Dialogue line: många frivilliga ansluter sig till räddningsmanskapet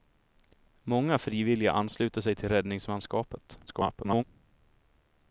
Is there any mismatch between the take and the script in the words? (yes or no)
yes